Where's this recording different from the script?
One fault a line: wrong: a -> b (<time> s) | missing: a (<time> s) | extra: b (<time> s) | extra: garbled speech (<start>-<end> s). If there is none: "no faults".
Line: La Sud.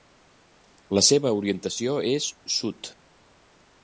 extra: seva orientació és (1.1 s)